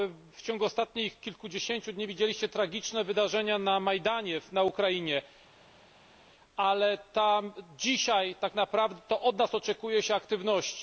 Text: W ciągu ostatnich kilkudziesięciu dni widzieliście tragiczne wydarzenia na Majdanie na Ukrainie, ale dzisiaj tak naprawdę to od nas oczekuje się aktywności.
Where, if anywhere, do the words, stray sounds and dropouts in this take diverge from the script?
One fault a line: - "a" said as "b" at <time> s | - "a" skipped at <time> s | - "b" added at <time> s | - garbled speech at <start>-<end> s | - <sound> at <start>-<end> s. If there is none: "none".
none